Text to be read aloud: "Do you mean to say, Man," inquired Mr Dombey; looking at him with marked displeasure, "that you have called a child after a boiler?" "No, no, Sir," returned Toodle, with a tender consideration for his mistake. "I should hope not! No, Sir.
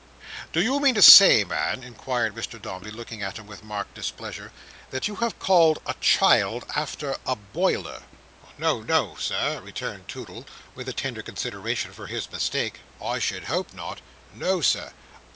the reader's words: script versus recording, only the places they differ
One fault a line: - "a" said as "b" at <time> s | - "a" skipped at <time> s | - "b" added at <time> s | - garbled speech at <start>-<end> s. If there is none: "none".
none